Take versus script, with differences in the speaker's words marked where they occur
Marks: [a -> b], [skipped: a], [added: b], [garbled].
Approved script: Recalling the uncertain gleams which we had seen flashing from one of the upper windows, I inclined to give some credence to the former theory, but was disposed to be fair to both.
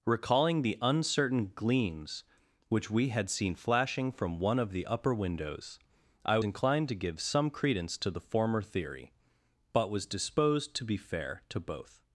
Recalling the uncertain gleams which we had seen flashing from one of the upper windows, I inclined to give some credence to the former theory, but was disposed to be fair to both.